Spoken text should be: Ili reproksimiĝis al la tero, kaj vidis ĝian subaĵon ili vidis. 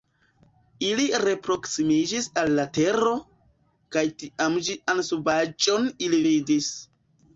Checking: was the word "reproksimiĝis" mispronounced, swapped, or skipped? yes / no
no